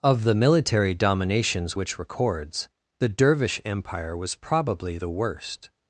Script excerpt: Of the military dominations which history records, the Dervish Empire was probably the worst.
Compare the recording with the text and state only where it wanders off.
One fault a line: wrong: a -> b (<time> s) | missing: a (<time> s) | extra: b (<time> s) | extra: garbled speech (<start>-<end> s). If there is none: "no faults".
missing: history (2.0 s)